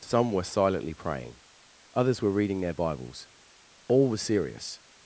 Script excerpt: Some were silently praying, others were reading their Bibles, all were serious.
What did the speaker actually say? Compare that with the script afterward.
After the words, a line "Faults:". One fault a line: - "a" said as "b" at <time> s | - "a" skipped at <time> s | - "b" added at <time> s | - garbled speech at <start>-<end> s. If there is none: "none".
Some were silently praying, others were reading their Bibles, all were serious.
Faults:
none